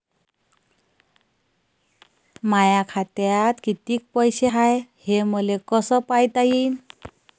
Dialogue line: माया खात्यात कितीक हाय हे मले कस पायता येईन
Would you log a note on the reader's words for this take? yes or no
yes